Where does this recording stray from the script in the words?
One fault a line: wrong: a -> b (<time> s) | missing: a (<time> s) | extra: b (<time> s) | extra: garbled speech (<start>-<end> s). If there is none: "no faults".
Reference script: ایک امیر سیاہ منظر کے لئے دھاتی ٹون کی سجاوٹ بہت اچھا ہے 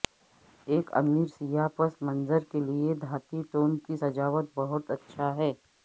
extra: پس (1.8 s)